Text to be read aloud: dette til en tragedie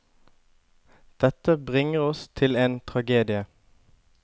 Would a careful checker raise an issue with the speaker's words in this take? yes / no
yes